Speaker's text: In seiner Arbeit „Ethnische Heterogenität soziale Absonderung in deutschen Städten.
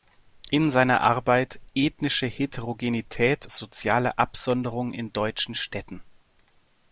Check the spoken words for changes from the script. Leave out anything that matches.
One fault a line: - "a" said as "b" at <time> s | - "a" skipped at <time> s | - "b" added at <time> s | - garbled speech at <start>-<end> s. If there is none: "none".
none